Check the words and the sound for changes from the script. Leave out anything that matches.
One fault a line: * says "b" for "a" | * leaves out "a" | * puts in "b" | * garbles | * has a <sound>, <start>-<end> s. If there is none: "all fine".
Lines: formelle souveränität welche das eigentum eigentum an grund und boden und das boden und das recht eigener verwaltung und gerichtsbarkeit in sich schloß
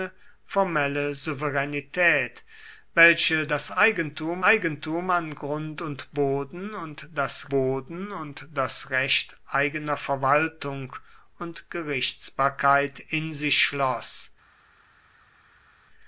all fine